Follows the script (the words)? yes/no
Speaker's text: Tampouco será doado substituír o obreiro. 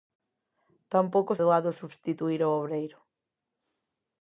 no